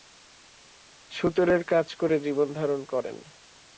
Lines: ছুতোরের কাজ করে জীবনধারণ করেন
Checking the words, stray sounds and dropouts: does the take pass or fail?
pass